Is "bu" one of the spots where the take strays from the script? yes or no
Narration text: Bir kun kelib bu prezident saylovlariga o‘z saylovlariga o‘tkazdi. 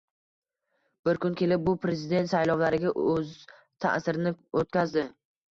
no